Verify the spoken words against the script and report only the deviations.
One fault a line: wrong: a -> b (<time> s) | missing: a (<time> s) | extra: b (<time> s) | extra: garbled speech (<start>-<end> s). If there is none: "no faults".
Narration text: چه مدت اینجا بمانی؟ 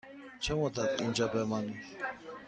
no faults